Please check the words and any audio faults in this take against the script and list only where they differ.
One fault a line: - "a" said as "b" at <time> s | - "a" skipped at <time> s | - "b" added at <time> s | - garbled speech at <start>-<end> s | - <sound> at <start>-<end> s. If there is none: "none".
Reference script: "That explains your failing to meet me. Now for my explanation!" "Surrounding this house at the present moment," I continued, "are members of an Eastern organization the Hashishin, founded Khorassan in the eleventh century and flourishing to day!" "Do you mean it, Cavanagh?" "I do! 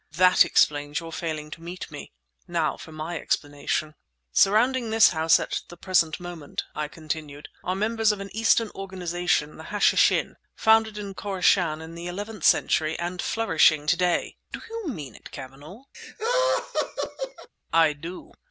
- "in" added at 11.0 s
- laugh at 15.9-17.5 s